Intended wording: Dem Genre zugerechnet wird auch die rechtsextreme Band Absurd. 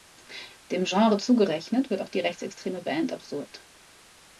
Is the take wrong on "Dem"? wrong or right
right